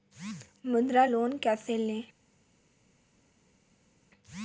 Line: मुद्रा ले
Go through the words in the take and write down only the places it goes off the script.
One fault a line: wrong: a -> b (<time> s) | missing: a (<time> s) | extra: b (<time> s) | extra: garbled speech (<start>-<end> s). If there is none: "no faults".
extra: लोन कैसे (1.0 s)